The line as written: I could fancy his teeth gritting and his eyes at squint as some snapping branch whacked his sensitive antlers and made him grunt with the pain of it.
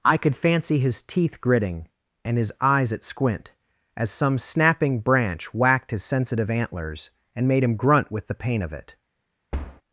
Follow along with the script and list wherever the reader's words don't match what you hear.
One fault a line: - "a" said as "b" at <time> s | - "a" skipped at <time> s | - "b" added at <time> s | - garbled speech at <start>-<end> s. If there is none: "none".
none